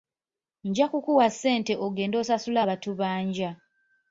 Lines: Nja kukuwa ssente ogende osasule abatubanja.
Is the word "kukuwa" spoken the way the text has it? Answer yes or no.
yes